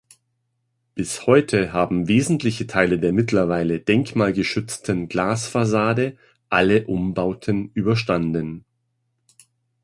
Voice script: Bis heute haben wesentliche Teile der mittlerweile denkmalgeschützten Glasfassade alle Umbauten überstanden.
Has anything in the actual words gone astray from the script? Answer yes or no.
no